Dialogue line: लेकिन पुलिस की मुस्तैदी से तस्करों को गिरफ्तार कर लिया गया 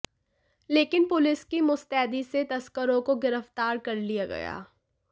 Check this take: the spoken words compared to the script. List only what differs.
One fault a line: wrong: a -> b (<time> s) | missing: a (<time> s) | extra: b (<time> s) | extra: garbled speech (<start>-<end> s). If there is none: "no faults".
no faults